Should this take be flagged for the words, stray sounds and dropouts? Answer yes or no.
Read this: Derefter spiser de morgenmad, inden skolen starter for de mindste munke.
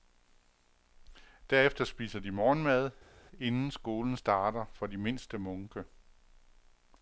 no